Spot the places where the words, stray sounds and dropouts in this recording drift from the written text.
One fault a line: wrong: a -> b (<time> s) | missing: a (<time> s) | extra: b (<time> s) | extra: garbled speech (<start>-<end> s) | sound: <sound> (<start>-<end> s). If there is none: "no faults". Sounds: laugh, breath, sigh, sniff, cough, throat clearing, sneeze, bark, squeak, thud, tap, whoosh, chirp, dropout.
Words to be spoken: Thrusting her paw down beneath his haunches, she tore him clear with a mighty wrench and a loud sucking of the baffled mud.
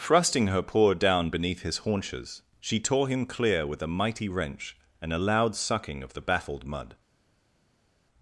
no faults